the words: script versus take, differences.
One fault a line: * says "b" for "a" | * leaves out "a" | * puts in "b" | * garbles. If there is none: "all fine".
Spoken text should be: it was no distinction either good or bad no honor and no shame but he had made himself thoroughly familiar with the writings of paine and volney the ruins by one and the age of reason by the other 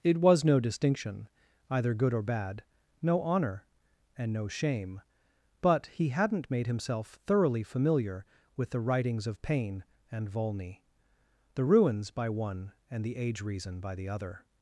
* says "hadn't" for "had"
* leaves out "of"